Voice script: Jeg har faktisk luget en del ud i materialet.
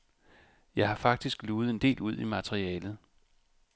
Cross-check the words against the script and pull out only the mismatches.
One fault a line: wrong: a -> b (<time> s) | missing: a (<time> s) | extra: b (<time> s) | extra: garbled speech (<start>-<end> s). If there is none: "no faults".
no faults